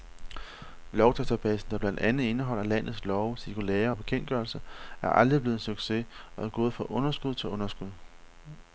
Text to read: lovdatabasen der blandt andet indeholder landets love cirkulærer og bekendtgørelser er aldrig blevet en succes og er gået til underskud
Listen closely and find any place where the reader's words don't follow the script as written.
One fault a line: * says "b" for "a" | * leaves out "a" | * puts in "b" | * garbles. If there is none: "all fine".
* puts in "fra underskud"